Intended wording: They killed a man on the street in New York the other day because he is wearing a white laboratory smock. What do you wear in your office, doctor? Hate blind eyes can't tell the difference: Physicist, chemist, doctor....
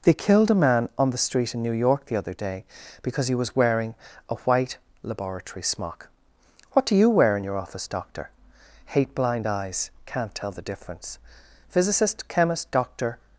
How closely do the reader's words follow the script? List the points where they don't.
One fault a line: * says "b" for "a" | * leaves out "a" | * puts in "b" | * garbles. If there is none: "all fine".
* says "was" for "is"